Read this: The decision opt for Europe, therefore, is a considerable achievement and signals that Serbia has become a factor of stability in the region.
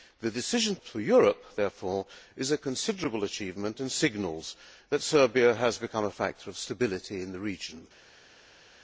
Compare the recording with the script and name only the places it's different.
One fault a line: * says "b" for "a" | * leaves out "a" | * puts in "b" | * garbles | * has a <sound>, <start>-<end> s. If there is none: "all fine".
all fine